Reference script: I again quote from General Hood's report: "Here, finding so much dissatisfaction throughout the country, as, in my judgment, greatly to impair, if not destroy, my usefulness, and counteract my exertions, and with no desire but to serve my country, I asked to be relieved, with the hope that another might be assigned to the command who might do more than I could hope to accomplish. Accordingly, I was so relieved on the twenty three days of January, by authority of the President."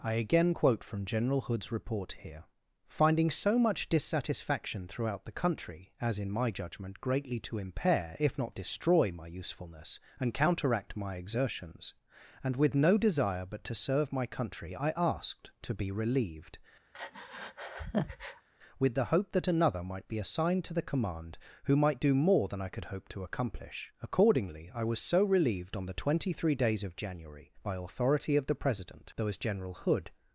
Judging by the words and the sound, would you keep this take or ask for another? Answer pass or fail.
fail